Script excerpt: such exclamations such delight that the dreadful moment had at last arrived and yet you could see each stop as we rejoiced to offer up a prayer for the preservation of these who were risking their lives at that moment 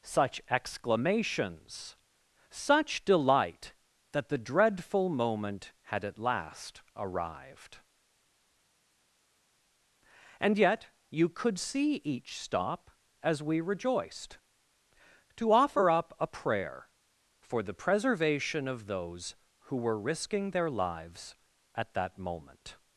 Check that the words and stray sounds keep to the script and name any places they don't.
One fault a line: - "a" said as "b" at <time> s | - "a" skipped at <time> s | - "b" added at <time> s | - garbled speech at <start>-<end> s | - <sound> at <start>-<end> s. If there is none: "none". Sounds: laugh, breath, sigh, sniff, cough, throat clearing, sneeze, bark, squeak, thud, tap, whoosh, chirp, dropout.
- "these" said as "those" at 18.9 s